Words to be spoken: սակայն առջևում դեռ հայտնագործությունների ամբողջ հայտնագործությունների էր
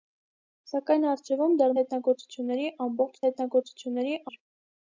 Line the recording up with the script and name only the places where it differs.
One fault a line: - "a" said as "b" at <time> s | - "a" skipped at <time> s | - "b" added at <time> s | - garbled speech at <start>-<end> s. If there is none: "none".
none